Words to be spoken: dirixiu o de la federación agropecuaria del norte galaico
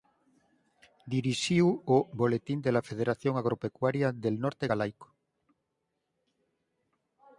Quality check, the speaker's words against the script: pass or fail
fail